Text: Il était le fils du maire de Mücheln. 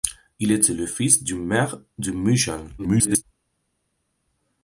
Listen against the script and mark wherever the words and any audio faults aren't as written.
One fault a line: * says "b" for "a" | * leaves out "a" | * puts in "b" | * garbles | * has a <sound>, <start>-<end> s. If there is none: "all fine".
* garbles